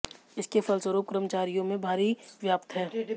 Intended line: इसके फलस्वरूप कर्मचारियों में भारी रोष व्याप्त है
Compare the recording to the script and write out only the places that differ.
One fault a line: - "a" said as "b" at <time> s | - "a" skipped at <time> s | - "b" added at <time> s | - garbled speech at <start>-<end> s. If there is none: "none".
- "रोष" skipped at 2.1 s